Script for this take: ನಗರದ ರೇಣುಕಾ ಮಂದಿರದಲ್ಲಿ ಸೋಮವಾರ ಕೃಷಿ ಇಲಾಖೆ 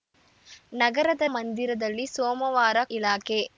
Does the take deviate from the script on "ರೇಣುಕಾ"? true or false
true